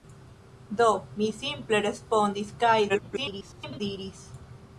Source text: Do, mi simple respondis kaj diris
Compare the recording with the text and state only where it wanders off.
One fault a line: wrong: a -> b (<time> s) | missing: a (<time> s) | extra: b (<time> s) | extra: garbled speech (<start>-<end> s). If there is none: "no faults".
extra: garbled speech (2.9-3.8 s)